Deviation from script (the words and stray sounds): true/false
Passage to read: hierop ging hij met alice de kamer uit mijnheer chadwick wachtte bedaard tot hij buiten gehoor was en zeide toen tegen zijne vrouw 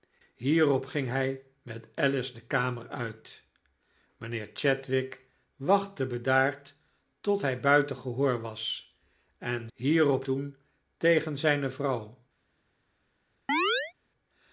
true